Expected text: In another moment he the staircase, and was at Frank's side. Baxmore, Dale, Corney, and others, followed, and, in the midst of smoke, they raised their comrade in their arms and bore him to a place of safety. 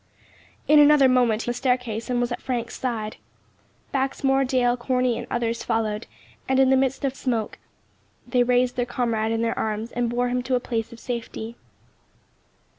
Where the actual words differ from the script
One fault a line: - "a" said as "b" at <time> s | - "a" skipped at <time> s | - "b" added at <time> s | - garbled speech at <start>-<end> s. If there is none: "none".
none